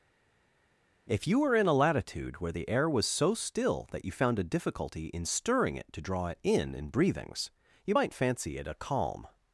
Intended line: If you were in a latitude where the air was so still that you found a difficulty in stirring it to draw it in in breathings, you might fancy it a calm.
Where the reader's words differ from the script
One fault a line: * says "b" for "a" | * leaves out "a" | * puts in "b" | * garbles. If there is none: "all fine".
all fine